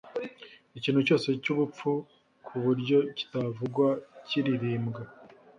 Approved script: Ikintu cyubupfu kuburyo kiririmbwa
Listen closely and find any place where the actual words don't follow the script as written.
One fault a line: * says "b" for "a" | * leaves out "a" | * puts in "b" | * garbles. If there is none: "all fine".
* puts in "cyose"
* puts in "kitavugwa"